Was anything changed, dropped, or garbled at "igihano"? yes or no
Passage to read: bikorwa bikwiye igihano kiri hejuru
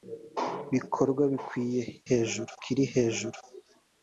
yes